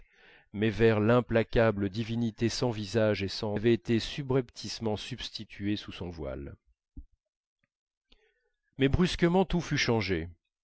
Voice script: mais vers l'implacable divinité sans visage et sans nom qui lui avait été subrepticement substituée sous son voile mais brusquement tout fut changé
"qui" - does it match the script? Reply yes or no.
no